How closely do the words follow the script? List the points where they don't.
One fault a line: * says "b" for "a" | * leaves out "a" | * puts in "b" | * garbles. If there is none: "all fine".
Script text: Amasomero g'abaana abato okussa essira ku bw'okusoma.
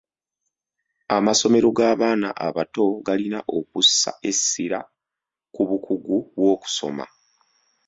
* puts in "galina"
* puts in "bukugu"